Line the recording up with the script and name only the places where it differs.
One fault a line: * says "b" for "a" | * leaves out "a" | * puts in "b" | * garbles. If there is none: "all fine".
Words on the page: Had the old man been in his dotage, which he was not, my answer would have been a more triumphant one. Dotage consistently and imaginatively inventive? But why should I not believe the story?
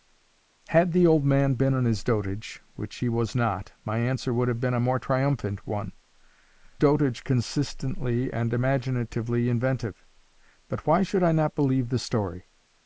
all fine